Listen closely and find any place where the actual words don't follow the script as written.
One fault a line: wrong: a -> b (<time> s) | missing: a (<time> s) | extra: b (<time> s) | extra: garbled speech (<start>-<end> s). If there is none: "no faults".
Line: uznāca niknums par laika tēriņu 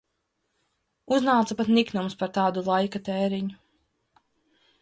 extra: pat (1.6 s)
extra: tādu (2.4 s)